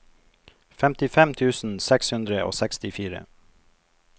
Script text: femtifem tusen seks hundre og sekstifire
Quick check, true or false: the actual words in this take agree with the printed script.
true